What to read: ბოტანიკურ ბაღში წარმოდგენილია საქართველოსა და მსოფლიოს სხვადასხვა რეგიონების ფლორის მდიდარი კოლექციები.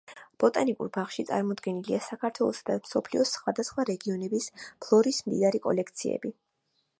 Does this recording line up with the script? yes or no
yes